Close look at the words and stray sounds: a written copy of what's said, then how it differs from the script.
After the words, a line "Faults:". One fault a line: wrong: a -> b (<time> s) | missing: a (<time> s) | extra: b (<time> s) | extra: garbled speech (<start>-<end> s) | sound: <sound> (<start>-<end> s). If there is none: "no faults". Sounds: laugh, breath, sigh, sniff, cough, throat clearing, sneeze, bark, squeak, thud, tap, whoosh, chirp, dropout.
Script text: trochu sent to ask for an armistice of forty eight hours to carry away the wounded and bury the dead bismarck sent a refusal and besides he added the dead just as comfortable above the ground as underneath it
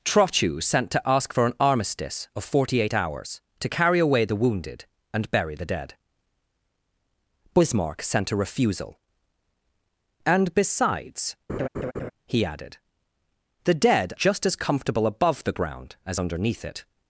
trochu sent to ask for an armistice of forty eight hours to carry away the wounded and bury the dead bismarck sent a refusal and besides he added the dead just as comfortable above the ground as underneath it
Faults:
sound: laugh (11.5-12.1 s)